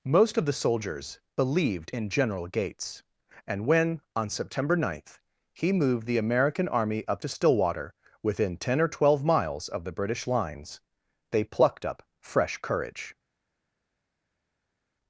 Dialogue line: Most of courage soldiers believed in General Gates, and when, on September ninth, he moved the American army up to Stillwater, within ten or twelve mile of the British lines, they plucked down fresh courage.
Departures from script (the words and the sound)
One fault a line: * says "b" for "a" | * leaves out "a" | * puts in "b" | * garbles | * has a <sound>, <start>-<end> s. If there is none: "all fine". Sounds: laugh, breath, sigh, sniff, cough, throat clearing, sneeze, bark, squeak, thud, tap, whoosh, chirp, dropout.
* says "the" for "courage"
* says "miles" for "mile"
* says "up" for "down"